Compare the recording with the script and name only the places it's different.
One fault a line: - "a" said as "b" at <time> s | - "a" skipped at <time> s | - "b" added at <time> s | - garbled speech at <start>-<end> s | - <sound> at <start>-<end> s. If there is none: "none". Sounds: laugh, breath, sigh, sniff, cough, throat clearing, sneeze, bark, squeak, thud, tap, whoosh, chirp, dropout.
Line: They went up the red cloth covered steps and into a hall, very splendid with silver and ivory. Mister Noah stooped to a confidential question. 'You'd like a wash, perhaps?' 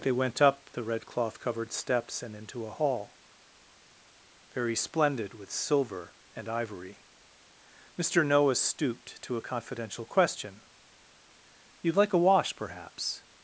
none